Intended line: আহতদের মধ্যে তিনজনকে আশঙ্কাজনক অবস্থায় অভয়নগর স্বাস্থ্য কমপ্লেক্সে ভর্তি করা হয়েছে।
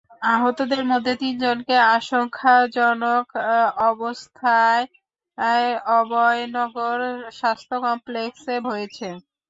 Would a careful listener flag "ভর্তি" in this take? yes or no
yes